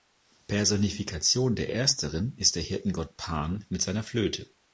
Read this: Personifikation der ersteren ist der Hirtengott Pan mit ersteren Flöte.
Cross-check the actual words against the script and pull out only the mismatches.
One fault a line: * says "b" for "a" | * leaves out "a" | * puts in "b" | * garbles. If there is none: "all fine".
* says "seiner" for "ersteren"